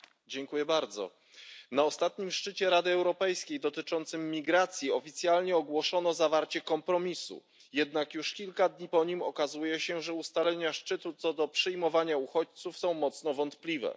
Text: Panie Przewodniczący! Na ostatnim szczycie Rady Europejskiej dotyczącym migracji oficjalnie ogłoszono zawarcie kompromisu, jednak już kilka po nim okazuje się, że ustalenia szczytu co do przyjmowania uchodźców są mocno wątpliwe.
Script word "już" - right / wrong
right